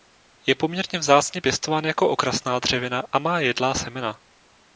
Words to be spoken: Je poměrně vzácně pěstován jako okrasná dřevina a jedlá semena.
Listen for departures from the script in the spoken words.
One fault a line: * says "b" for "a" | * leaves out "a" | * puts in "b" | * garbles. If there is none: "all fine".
* puts in "má"